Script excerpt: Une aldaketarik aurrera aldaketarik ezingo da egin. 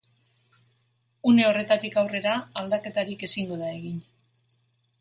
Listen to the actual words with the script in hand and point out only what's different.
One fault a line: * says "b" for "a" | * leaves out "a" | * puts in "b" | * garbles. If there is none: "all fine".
* says "horretatik" for "aldaketarik"